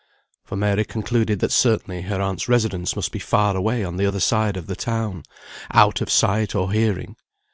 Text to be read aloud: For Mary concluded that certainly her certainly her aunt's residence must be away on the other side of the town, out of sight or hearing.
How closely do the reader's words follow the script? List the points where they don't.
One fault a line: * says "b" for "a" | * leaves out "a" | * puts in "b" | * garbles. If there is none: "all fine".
* leaves out "certainly her"
* puts in "far"